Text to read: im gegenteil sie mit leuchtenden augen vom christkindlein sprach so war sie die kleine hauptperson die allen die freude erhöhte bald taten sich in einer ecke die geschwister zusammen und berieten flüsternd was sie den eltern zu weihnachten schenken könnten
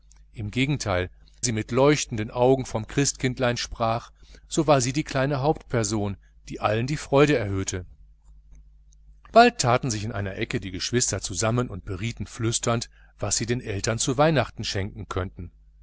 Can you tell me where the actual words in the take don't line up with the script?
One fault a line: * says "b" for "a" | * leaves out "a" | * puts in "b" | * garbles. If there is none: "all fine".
all fine